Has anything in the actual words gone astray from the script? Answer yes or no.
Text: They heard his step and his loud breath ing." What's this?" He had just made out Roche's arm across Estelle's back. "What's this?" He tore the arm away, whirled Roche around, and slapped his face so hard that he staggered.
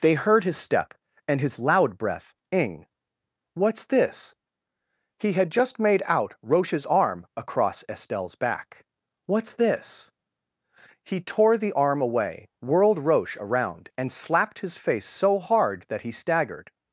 no